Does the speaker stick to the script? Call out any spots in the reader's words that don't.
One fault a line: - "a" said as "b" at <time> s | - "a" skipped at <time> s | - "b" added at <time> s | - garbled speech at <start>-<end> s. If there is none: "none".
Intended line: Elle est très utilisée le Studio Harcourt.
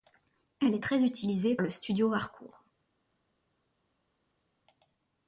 none